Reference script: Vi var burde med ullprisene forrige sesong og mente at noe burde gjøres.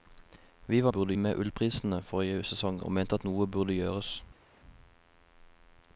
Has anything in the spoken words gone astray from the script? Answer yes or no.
no